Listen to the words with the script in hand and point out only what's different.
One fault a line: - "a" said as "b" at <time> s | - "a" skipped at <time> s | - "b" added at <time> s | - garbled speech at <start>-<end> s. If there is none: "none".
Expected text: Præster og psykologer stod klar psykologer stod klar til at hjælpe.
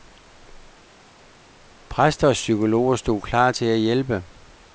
- "psykologer stod klar" skipped at 3.5 s